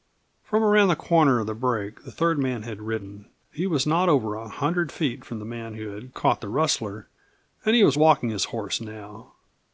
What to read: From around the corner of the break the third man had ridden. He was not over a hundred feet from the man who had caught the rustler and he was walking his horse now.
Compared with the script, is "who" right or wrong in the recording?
right